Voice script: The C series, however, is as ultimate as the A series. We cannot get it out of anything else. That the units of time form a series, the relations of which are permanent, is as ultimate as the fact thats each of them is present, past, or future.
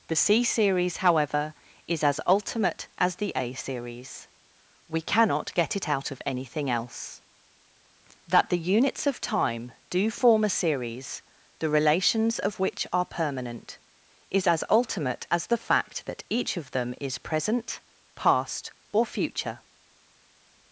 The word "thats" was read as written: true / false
false